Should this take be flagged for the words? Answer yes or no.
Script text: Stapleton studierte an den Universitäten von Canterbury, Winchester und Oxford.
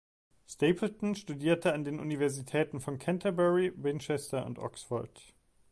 no